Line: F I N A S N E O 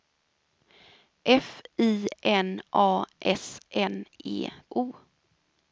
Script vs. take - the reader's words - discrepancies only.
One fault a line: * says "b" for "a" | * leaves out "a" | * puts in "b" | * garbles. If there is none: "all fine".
all fine